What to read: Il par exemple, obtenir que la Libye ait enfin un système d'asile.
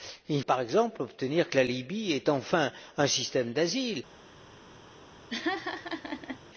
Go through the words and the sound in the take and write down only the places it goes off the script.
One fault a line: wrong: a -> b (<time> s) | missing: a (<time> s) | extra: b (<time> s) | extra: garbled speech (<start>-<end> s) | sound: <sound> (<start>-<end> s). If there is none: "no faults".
sound: laugh (5.3-6.4 s)